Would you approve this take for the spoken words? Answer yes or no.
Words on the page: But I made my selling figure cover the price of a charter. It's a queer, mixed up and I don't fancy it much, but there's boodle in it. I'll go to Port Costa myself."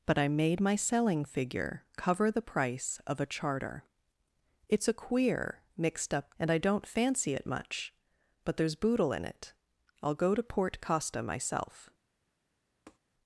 yes